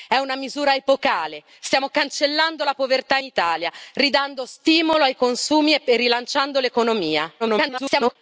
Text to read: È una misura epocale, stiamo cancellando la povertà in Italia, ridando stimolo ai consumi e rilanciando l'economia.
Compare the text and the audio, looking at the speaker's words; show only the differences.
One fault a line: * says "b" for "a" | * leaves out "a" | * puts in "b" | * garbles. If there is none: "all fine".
* leaves out "in"
* garbles